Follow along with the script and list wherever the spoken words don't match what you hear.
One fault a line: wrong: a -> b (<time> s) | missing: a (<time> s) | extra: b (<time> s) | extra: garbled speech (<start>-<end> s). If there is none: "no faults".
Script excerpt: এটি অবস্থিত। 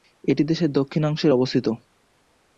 extra: দেশের দক্ষিণাংশে (0.4 s)